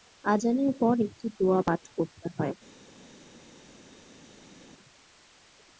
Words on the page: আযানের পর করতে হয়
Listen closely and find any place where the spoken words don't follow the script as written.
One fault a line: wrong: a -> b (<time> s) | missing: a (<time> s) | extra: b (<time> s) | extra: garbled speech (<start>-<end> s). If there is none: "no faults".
extra: একটি দোয়া পাঠ (1.1 s)